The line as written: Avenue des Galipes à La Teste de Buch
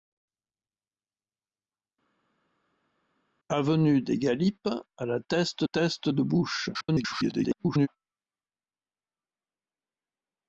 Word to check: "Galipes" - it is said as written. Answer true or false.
true